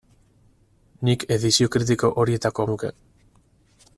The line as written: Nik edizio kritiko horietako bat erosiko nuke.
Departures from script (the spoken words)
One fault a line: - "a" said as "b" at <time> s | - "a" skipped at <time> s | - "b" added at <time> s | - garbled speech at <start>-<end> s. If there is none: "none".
- "bat erosiko" skipped at 2.7 s